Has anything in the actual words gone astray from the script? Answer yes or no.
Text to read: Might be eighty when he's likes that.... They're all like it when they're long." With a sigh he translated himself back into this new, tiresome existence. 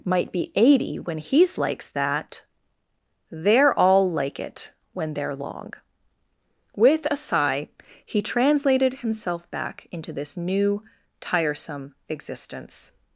no